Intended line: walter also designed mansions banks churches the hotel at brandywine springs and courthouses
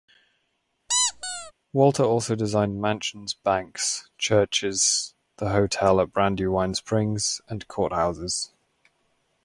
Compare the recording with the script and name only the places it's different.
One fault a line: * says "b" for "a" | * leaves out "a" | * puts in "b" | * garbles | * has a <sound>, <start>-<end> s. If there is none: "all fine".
* has a squeak, 0.9-1.5 s